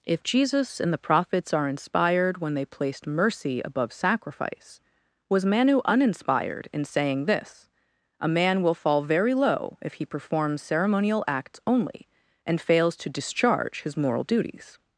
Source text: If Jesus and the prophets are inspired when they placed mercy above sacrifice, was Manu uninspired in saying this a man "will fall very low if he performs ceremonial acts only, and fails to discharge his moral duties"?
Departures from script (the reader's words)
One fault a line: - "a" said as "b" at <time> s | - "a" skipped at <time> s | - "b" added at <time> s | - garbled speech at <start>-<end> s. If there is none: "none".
none